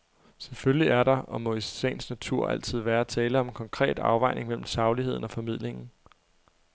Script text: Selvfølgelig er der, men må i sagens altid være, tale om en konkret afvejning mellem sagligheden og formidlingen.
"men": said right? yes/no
no